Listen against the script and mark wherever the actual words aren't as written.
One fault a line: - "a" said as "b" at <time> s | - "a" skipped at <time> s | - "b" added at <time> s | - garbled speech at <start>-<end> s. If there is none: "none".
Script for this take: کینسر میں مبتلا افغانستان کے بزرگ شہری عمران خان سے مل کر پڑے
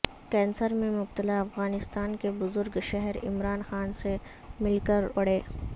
none